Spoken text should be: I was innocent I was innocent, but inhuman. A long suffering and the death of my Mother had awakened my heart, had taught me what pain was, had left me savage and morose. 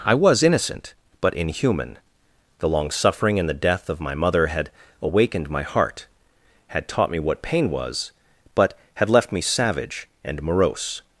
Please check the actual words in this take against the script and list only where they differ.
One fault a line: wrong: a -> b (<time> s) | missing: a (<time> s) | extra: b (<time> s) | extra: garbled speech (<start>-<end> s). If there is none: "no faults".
missing: I was innocent (0.9 s)
wrong: A -> The (2.6 s)
extra: but (8.6 s)